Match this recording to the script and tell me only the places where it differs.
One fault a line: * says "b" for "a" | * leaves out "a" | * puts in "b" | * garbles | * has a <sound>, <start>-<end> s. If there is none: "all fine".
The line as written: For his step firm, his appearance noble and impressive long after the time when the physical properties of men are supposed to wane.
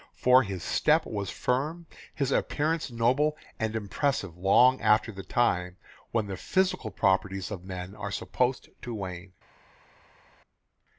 * puts in "was"